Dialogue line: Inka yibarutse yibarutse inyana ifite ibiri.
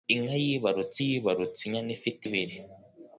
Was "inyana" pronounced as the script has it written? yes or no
yes